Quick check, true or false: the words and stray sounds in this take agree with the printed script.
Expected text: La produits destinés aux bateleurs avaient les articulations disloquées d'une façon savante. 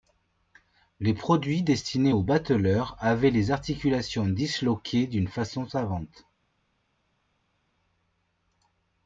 false